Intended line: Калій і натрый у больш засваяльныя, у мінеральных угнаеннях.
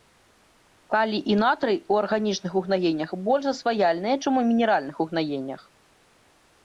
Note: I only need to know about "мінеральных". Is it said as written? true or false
true